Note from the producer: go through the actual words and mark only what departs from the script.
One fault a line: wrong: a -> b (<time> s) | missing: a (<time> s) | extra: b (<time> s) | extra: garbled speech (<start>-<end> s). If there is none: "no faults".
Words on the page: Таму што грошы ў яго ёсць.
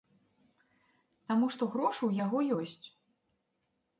no faults